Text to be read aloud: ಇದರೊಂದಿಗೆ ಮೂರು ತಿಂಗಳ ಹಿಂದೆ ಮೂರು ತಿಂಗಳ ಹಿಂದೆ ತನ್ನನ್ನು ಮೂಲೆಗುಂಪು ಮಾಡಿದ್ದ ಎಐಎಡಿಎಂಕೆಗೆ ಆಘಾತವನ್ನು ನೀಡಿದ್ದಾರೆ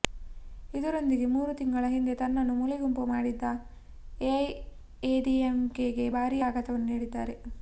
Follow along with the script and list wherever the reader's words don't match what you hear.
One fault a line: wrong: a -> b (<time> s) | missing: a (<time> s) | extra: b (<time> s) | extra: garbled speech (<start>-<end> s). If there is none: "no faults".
missing: ಮೂರು ತಿಂಗಳ ಹಿಂದೆ (2.1 s)
extra: ಭಾರೀ (6.2 s)